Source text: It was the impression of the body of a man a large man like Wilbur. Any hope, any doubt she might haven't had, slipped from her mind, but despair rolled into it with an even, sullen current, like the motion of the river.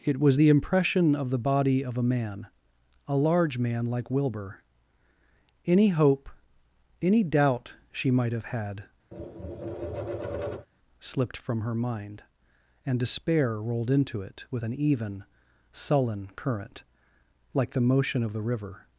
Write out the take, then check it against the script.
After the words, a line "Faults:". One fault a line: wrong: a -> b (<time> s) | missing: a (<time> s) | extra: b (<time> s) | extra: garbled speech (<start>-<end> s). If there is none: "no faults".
It was the impression of the body of a man a large man like Wilbur. Any hope, any doubt she might have had, slipped from her mind, and despair rolled into it with an even, sullen current, like the motion of the river.
Faults:
wrong: haven't -> have (8.3 s)
wrong: but -> and (12.9 s)